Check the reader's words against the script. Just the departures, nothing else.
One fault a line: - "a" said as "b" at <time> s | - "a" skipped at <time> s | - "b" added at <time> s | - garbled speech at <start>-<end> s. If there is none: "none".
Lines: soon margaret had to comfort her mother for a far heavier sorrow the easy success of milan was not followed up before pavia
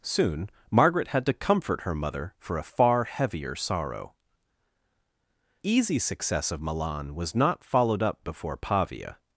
- "the" skipped at 4.1 s